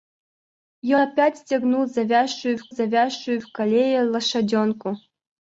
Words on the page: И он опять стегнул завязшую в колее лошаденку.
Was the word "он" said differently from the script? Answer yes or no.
yes